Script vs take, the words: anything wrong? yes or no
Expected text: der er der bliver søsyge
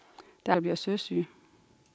no